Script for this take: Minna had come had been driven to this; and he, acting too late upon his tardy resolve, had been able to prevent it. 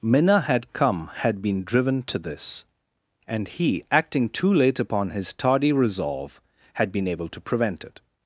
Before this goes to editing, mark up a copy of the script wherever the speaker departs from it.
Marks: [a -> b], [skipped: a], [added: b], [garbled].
Minna had come had been driven to this; and he, acting too late upon his tardy resolve, had been able to prevent it.